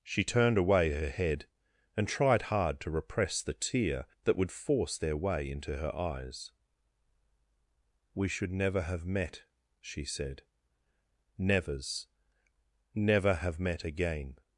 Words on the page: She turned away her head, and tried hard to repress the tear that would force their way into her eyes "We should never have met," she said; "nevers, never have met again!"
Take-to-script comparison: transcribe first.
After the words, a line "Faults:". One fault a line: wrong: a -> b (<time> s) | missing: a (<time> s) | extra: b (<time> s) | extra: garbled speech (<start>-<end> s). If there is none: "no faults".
She turned away her head, and tried hard to repress the tear that would force their way into her eyes "We should never have met," she said; "nevers, never have met again!"
Faults:
no faults